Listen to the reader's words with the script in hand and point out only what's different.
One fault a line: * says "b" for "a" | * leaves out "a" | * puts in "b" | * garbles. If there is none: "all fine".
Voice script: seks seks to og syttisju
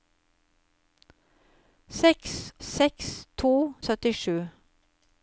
all fine